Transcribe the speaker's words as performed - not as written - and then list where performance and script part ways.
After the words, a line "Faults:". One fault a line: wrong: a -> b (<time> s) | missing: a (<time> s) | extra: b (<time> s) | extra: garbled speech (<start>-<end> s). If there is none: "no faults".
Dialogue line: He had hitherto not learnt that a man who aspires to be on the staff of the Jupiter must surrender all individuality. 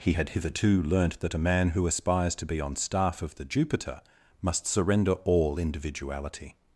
He had hitherto learnt that a man who aspires to be on staff of the Jupiter must surrender all individuality.
Faults:
missing: not (0.8 s)
missing: the (2.7 s)